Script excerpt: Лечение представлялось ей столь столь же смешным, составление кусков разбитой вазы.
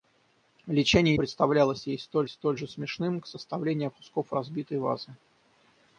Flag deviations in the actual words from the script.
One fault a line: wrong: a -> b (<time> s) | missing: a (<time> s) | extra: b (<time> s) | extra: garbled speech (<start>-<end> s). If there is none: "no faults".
no faults